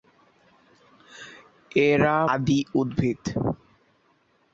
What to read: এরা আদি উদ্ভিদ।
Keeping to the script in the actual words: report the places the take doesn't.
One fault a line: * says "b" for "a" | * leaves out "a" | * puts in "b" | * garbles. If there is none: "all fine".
all fine